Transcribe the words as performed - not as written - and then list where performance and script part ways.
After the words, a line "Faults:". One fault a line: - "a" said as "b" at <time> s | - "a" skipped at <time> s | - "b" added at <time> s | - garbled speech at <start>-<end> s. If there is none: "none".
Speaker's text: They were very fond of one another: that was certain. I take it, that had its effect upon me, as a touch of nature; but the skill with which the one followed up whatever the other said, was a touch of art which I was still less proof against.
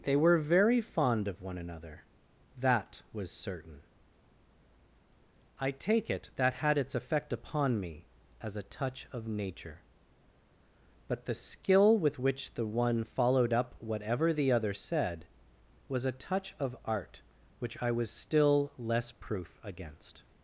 They were very fond of one another: that was certain. I take it, that had its effect upon me, as a touch of nature; but the skill with which the one followed up whatever the other said, was a touch of art which I was still less proof against.
Faults:
none